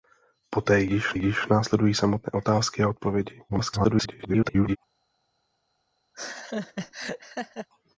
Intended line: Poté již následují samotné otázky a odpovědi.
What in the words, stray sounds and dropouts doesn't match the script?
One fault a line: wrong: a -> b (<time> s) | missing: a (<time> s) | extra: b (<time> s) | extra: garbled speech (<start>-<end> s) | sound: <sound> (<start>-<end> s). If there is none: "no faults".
extra: již (1.1 s)
extra: garbled speech (3.5-4.8 s)
sound: laugh (6.1-7.7 s)